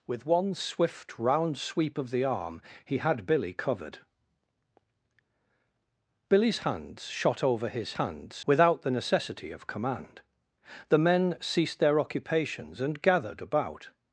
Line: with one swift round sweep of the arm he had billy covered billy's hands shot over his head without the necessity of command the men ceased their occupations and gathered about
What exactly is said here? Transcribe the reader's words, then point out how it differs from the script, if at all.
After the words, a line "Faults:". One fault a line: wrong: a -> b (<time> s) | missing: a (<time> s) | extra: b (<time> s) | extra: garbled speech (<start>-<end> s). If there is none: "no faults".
with one swift round sweep of the arm he had billy covered billy's hands shot over his hands without the necessity of command the men ceased their occupations and gathered about
Faults:
wrong: head -> hands (7.9 s)